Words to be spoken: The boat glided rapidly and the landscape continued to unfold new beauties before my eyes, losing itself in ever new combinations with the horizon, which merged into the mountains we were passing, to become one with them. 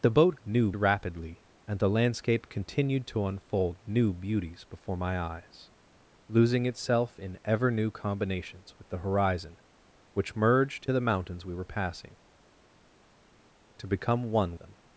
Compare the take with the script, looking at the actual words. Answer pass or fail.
fail